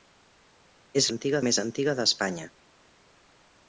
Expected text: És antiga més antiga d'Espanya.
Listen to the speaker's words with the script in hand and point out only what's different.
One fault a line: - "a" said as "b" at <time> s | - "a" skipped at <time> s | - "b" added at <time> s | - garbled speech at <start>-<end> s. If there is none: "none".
none